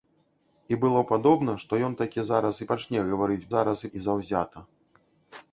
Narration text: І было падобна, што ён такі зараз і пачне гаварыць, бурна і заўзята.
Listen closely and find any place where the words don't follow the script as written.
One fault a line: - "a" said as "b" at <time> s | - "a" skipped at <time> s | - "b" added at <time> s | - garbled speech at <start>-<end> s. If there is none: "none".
- "бурна" said as "зараз" at 3.5 s